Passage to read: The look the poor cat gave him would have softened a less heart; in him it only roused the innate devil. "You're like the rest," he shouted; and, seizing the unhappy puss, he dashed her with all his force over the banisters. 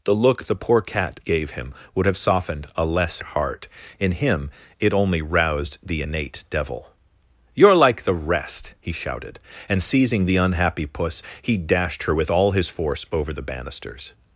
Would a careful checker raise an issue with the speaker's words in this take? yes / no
no